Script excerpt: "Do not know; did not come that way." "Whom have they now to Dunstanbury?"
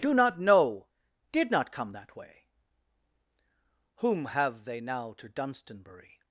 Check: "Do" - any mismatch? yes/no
no